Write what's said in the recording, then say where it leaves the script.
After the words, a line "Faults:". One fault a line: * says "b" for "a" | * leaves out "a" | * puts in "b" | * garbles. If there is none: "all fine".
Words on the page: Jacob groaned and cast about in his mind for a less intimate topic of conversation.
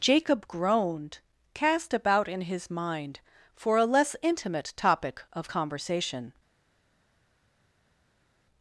Jacob groaned cast about in his mind for a less intimate topic of conversation.
Faults:
* leaves out "and"